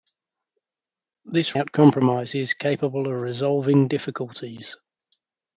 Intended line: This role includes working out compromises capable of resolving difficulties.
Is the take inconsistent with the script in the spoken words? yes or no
yes